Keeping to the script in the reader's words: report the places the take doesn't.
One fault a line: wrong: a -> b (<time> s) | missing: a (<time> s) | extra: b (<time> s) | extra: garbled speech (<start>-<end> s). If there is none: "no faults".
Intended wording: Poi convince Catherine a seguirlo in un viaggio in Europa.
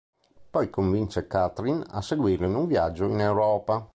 no faults